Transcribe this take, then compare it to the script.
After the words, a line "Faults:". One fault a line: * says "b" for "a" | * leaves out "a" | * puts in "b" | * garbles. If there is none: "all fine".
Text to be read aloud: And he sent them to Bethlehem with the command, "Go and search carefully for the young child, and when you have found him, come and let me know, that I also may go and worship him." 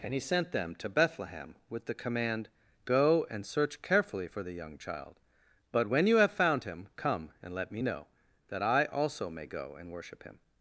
And he sent them to Bethlehem with the command, "Go and search carefully for the young child, but when you have found him, come and let me know, that I also may go and worship him."
Faults:
* says "but" for "and"